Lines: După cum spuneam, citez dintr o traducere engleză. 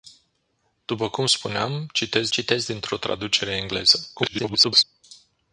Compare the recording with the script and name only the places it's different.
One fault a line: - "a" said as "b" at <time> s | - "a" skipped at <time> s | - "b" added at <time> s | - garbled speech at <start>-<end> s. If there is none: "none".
- "citez" added at 2.3 s
- garbled speech at 4.2-4.8 s